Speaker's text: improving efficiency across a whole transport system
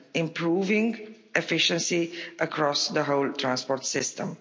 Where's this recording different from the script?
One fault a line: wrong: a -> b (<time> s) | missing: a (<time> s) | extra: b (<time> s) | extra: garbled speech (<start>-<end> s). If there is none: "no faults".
wrong: a -> the (2.9 s)